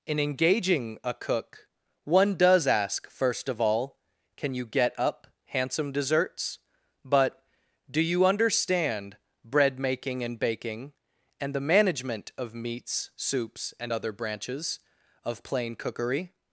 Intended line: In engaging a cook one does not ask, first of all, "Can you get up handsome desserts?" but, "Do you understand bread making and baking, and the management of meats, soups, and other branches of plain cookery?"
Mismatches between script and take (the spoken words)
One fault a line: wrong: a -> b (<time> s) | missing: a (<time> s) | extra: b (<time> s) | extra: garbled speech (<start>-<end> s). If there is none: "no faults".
missing: not (2.6 s)